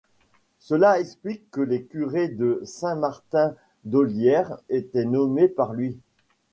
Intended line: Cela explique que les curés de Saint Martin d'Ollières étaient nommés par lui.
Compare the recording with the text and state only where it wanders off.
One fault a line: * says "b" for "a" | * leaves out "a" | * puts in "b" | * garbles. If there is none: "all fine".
all fine